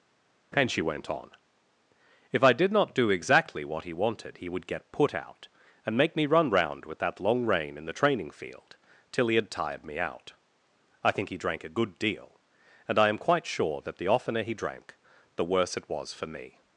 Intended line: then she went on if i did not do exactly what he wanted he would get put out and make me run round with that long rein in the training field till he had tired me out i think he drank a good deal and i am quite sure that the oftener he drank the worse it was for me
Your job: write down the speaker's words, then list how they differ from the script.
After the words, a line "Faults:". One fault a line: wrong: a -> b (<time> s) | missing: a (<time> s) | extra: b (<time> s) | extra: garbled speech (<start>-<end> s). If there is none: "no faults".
and she went on if i did not do exactly what he wanted he would get put out and make me run round with that long rein in the training field till he had tired me out i think he drank a good deal and i am quite sure that the oftener he drank the worse it was for me
Faults:
wrong: then -> and (0.5 s)